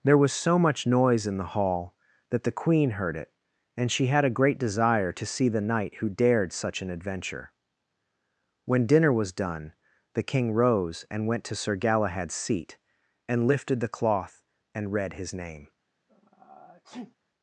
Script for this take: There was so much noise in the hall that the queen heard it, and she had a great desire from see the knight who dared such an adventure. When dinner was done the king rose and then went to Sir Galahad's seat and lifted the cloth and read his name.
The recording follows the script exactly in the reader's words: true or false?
false